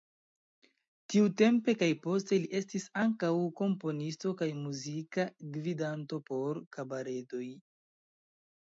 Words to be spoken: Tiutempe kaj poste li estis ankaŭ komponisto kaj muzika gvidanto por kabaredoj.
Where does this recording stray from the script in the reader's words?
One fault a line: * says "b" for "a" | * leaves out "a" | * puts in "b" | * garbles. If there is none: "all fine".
all fine